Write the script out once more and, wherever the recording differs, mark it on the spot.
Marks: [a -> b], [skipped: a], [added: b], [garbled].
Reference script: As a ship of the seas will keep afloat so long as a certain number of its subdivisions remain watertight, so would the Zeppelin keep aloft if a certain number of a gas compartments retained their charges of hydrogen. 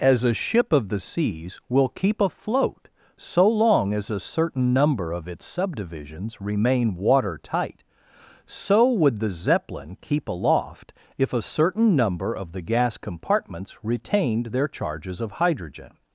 As a ship of the seas will keep afloat so long as a certain number of its subdivisions remain watertight, so would the Zeppelin keep aloft if a certain number of [a -> the] gas compartments retained their charges of hydrogen.